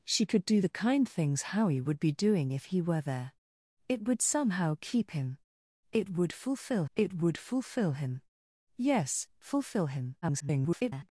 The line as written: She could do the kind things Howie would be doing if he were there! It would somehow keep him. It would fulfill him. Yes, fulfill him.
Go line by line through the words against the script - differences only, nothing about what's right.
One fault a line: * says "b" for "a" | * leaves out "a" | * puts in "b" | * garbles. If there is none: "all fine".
* puts in "it would fulfill"
* garbles